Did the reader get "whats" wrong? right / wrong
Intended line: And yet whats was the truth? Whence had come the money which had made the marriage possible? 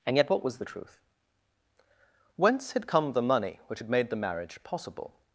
wrong